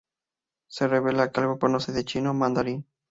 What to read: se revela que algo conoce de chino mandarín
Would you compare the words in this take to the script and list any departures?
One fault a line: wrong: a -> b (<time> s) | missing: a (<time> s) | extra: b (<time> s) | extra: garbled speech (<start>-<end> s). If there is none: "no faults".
no faults